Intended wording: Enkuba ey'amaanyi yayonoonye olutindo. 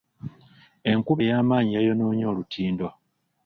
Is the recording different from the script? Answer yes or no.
no